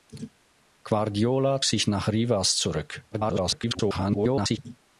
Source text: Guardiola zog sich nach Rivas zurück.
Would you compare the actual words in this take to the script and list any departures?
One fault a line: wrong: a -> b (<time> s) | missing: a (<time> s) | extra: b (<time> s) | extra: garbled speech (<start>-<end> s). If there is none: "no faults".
missing: zog (1.6 s)
extra: garbled speech (3.1-4.6 s)